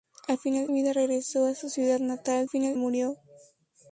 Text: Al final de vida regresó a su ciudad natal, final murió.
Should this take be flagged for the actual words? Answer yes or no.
no